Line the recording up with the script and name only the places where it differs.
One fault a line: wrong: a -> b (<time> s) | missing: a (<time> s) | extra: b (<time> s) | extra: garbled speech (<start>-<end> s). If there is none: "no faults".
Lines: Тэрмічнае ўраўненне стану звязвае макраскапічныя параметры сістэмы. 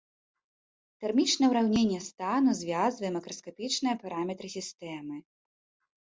no faults